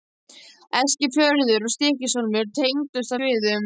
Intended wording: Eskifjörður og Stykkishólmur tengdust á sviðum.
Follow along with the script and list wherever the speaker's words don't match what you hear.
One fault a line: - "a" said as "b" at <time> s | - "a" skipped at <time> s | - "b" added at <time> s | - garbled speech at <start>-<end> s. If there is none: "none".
none